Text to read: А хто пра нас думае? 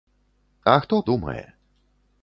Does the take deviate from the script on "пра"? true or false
true